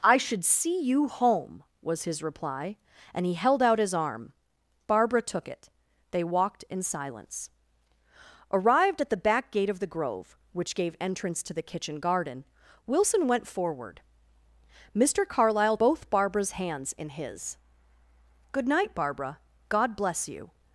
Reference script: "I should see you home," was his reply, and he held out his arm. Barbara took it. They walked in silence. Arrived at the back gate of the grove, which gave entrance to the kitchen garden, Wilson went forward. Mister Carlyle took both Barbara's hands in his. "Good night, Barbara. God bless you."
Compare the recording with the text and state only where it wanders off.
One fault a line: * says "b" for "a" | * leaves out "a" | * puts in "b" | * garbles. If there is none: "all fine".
* leaves out "took"